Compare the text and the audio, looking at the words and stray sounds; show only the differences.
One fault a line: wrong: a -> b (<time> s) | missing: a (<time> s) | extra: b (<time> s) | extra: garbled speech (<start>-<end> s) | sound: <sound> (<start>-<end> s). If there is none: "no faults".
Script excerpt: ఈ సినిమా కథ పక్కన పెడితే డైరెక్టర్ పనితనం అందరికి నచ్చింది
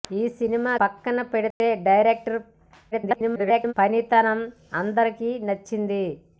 missing: కథ (0.7 s)
sound: dropout (1.5-1.6 s)
extra: garbled speech (2.9-3.7 s)